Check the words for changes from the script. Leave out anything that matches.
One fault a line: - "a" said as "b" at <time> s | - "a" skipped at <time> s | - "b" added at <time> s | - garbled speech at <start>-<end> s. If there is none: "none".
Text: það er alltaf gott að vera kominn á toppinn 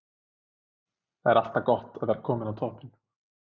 none